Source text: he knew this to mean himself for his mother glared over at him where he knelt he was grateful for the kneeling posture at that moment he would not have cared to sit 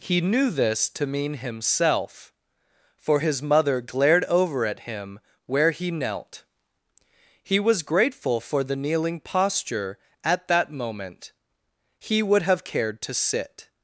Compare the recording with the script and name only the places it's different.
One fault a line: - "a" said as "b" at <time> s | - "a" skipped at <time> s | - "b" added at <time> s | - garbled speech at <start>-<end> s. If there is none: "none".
- "not" skipped at 12.4 s